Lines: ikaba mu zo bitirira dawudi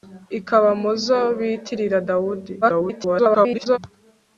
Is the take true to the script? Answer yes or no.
no